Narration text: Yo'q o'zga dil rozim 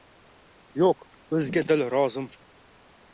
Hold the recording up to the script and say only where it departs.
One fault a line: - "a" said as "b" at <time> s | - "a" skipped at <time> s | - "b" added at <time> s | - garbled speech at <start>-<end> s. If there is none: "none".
none